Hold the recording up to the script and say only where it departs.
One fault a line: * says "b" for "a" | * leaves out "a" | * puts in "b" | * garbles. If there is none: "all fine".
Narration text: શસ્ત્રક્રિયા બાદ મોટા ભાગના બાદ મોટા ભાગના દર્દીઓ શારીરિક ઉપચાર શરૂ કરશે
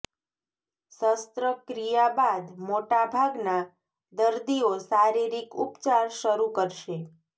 * leaves out "બાદ મોટા ભાગના"